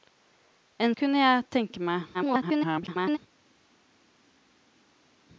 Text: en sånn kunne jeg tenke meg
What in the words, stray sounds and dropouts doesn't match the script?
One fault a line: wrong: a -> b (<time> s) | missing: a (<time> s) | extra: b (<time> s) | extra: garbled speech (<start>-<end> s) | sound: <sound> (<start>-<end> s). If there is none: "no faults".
missing: sånn (0.9 s)
extra: garbled speech (2.1-3.2 s)